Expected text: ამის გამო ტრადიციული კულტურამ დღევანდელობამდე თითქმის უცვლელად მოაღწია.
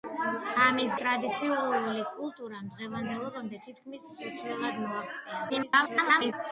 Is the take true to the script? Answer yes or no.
no